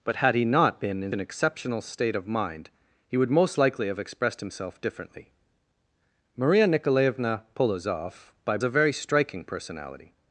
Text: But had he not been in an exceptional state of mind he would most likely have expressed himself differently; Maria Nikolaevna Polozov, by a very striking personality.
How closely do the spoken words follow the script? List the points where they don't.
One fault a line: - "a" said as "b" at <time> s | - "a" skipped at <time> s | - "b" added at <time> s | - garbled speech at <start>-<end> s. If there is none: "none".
none